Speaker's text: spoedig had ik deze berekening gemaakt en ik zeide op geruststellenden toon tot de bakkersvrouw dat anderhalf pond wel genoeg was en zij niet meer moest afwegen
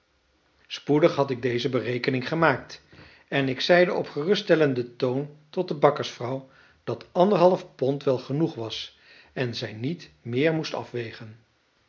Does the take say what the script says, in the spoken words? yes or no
yes